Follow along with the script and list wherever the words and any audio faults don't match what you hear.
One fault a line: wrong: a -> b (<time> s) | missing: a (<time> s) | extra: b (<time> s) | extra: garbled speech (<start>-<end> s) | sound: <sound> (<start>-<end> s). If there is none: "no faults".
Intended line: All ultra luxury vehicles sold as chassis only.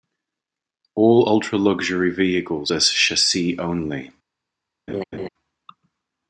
missing: sold (2.7 s)
sound: laugh (4.9-5.3 s)